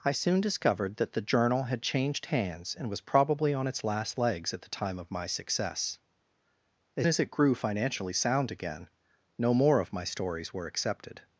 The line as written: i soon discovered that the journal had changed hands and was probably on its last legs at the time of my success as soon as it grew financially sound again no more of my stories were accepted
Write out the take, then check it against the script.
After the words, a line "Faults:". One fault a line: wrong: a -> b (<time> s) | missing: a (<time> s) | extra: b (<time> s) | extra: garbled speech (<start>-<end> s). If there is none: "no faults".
i soon discovered that the journal had changed hands and was probably on its last legs at the time of my success as as it grew financially sound again no more of my stories were accepted
Faults:
missing: soon (7.1 s)